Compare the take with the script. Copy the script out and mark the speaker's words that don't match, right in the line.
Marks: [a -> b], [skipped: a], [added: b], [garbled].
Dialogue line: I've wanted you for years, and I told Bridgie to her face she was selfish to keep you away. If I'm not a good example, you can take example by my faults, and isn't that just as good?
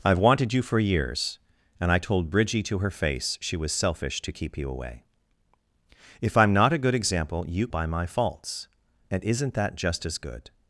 I've wanted you for years, and I told Bridgie to her face she was selfish to keep you away. If I'm not a good example, you [skipped: can take example] by my faults, and isn't that just as good?